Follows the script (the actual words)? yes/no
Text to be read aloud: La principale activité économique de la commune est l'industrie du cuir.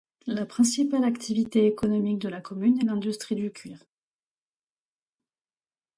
yes